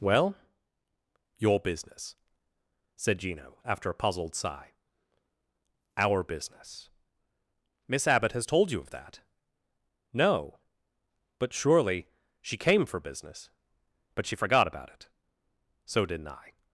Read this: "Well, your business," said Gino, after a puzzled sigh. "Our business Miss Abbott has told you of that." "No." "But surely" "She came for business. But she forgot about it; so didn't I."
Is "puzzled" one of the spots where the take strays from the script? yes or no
no